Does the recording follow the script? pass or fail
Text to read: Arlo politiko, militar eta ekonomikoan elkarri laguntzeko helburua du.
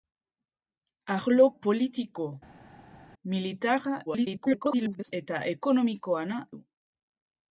fail